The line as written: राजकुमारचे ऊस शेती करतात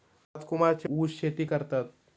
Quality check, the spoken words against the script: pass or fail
pass